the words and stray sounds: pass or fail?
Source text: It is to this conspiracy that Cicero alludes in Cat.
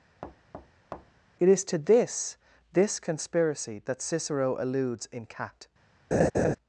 fail